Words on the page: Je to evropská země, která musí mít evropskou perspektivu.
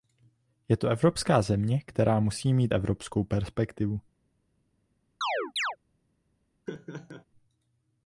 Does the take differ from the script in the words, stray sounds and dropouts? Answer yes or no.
yes